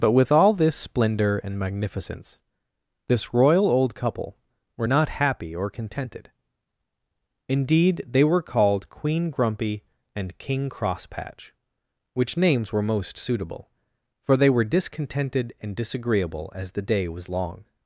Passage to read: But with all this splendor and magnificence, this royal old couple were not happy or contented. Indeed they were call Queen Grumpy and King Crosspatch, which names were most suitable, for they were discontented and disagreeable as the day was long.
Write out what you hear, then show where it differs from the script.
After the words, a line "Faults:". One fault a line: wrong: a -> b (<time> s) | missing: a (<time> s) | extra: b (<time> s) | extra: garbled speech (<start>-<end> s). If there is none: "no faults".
But with all this splendor and magnificence, this royal old couple were not happy or contented. Indeed they were called Queen Grumpy and King Crosspatch, which names were most suitable, for they were discontented and disagreeable as the day was long.
Faults:
wrong: call -> called (8.4 s)